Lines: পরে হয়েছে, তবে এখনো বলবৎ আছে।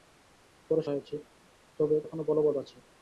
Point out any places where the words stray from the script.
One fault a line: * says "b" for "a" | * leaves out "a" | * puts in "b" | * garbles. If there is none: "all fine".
all fine